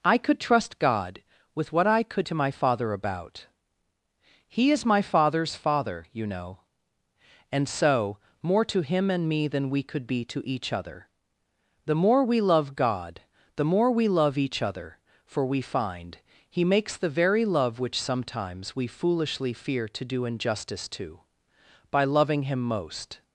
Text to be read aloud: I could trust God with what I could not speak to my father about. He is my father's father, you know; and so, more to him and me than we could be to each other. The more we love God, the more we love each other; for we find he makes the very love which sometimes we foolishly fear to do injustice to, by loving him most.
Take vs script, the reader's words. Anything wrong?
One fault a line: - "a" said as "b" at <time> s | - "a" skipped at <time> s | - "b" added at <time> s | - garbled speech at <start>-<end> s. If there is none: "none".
- "not speak" skipped at 2.3 s